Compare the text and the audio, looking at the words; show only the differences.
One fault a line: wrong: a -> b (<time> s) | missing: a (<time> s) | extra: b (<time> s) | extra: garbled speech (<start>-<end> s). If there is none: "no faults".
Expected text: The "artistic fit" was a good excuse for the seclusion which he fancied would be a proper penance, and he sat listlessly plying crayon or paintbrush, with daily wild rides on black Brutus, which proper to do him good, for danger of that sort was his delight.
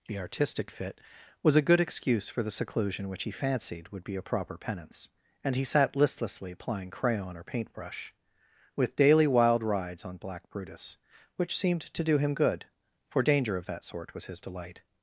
wrong: proper -> seemed (11.6 s)